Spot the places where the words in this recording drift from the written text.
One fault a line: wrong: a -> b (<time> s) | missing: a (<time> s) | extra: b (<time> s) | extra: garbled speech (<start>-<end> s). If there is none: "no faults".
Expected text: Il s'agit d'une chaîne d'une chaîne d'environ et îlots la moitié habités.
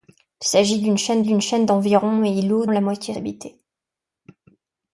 no faults